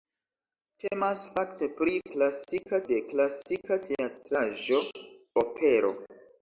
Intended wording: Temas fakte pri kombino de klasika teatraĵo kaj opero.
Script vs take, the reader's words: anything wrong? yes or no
yes